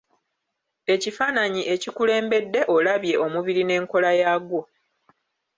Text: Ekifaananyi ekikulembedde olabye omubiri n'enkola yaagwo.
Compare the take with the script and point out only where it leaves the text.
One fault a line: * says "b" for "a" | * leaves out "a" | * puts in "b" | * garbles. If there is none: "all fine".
all fine